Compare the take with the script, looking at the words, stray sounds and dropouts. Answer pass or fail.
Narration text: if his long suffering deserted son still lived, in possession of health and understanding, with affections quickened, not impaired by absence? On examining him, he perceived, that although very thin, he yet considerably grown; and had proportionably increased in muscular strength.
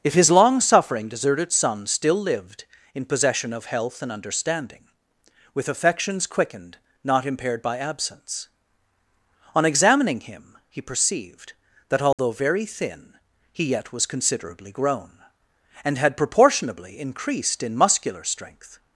fail